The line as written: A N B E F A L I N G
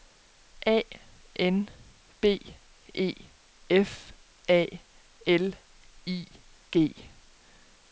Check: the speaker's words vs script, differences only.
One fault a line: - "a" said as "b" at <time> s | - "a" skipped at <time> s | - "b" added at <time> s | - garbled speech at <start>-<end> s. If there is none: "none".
- "N" skipped at 6.2 s